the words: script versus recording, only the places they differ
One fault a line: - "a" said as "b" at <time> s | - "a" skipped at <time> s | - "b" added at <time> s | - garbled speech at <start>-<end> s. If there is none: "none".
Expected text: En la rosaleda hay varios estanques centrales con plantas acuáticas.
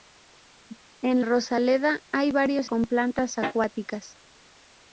- "la" skipped at 1.2 s
- "estanques centrales" skipped at 2.7 s